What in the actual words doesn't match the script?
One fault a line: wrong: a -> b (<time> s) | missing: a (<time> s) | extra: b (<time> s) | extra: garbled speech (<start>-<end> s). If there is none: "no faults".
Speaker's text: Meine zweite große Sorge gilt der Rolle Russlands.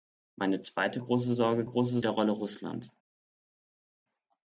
wrong: gilt -> große (1.6 s)